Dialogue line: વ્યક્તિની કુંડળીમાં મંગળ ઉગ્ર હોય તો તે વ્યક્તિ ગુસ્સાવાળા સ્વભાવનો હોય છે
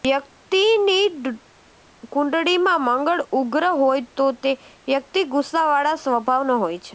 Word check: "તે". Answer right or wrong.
right